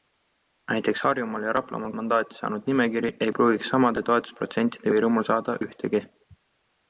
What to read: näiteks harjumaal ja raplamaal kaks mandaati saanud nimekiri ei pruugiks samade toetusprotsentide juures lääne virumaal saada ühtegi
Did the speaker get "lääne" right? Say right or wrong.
wrong